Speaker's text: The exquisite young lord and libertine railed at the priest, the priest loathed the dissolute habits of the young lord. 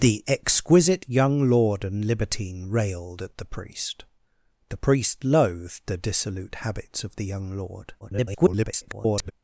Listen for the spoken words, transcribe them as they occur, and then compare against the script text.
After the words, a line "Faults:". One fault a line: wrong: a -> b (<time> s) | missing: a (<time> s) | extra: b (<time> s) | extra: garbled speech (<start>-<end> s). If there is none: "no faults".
The exquisite young lord and libertine railed at the priest, the priest loathed the dissolute habits of the young lord. [garbled]
Faults:
extra: garbled speech (8.0-9.3 s)